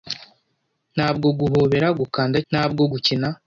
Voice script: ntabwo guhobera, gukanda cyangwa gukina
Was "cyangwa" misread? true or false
true